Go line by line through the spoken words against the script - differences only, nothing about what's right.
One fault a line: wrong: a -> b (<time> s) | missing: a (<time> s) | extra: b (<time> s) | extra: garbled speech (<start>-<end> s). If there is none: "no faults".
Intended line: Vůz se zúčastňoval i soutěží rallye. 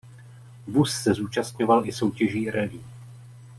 no faults